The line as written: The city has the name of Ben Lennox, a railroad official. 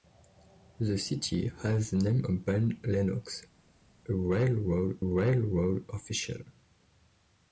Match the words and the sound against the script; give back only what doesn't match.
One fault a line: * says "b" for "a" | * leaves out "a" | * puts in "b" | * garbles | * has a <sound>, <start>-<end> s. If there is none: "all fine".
* puts in "railroad"